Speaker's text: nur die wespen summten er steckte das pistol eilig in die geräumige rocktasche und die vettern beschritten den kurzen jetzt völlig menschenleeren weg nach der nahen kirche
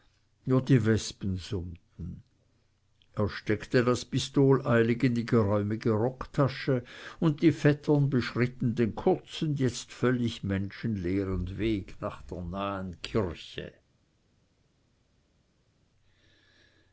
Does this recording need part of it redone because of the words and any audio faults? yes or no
no